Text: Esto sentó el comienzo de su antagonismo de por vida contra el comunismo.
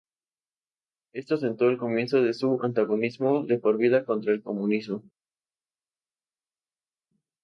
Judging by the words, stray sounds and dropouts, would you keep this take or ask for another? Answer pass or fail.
pass